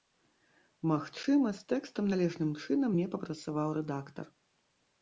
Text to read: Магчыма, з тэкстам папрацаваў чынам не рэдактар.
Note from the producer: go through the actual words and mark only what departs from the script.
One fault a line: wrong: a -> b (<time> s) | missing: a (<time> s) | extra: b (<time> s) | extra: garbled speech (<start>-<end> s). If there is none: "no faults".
wrong: папрацаваў -> належным (2.1 s)
extra: папрацаваў (3.2 s)